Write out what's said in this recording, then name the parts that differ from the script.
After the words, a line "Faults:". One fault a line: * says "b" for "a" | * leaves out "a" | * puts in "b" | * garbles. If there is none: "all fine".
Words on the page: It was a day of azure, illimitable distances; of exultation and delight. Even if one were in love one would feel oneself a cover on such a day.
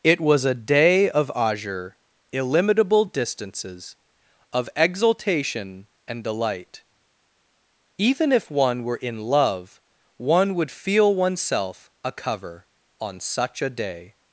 It was a day of azure, illimitable distances; of exultation and delight. Even if one were in love one would feel oneself a cover on such a day.
Faults:
all fine